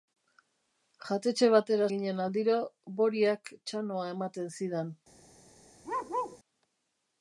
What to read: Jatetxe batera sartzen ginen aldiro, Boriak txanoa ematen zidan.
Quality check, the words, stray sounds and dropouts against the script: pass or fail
fail